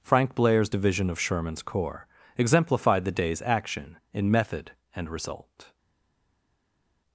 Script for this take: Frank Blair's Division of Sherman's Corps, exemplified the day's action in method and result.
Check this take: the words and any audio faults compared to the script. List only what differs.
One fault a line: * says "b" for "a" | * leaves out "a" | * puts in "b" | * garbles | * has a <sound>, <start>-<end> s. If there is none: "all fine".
all fine